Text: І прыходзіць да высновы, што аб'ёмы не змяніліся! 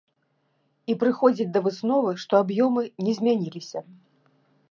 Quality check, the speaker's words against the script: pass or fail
pass